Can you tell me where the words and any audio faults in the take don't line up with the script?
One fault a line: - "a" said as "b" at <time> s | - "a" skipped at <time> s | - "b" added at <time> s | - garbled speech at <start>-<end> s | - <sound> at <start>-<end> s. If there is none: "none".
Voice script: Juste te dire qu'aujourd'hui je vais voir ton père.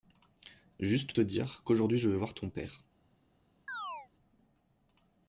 - chirp at 3.7-4.1 s